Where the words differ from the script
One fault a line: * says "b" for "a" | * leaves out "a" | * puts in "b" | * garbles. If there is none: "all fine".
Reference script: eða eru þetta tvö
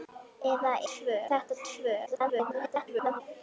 * says "tvö" for "eru"
* garbles